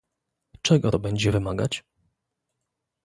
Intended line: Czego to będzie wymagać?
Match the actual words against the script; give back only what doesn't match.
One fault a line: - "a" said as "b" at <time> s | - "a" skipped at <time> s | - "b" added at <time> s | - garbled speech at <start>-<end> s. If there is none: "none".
none